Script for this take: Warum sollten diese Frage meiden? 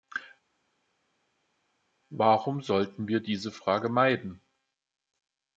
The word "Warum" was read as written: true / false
true